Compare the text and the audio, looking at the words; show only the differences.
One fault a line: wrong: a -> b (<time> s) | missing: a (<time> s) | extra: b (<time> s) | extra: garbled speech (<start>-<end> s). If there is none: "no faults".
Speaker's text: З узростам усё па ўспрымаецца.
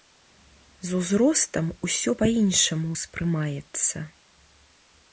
extra: іншаму (2.4 s)